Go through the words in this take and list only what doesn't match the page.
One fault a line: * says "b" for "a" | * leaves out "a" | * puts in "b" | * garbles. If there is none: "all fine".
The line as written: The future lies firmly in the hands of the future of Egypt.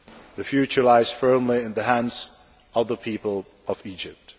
* says "people" for "future"